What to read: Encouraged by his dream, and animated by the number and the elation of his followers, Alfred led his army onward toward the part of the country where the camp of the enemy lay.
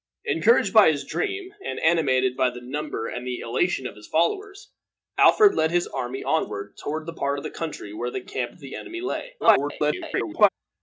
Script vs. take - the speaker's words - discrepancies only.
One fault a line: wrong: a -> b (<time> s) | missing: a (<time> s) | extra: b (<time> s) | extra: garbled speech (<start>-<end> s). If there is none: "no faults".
extra: garbled speech (9.4-10.5 s)